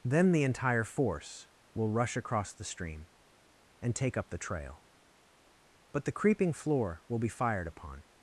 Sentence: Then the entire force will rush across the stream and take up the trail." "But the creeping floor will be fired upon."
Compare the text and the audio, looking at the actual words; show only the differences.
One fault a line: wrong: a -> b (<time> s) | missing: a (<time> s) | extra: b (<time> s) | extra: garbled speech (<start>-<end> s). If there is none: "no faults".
no faults